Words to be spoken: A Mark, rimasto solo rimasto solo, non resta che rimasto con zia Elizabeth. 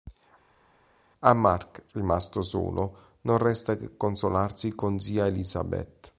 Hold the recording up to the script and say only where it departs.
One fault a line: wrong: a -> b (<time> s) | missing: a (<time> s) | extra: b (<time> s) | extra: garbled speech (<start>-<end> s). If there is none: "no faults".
missing: rimasto solo (3.2 s)
wrong: rimasto -> consolarsi (4.0 s)